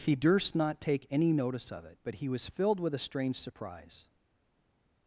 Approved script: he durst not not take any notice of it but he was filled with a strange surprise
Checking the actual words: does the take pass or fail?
fail